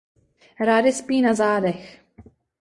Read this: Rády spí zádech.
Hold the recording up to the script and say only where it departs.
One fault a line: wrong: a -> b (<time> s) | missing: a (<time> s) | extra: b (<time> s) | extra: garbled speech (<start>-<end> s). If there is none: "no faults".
extra: na (1.2 s)